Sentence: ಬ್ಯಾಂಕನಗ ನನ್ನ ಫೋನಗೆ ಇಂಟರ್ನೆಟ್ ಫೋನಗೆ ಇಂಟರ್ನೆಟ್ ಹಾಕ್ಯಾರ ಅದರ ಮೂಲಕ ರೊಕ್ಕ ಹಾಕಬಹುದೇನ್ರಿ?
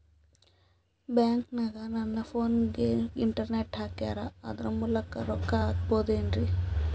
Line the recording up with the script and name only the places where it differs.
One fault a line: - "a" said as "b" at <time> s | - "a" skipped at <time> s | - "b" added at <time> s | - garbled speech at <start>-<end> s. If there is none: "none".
- "ಫೋನಗೆ ಇಂಟರ್ನೆಟ್" skipped at 3.8 s